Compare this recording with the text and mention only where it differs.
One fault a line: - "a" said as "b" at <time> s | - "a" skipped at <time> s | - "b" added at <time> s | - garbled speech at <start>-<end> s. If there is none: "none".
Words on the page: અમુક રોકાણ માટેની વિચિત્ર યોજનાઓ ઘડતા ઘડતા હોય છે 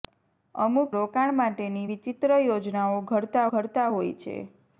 none